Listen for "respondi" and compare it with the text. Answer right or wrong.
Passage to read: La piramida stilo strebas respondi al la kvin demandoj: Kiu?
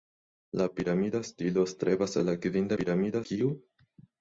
wrong